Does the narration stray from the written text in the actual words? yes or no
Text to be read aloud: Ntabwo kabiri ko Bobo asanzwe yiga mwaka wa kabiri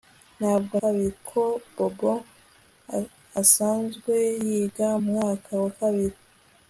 no